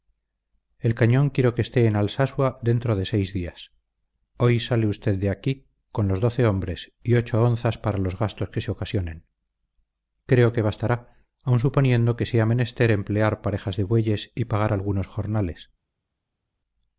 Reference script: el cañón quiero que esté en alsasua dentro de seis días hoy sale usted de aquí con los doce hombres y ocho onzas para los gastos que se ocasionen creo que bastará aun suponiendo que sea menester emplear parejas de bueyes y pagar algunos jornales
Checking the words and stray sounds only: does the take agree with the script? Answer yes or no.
yes